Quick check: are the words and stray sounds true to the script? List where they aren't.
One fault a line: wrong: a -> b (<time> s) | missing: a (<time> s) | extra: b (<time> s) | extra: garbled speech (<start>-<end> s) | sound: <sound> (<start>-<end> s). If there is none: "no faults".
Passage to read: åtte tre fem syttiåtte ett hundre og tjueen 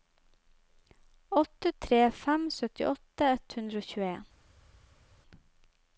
no faults